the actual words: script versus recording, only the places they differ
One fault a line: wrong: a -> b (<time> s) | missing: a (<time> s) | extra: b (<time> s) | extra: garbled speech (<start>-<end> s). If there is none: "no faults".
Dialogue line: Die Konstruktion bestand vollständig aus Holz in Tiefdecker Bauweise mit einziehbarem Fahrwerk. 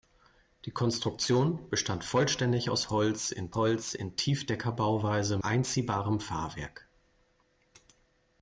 extra: Holz in (3.5 s)
missing: mit (5.4 s)